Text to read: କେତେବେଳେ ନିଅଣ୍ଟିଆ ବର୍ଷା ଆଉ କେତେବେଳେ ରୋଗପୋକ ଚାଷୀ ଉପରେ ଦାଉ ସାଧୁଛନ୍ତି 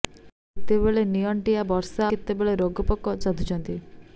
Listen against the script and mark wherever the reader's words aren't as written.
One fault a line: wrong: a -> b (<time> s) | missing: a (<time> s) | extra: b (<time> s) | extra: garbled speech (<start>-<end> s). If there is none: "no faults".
missing: ଆଉ (2.1 s)
missing: ଚାଷୀ ଉପରେ ଦାଉ (3.1 s)